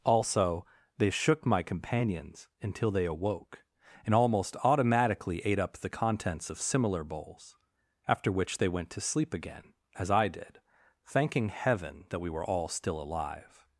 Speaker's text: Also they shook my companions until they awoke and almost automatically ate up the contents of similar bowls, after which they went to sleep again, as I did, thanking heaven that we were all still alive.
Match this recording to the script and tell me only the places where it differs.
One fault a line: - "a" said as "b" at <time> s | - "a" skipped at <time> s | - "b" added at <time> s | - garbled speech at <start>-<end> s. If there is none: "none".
none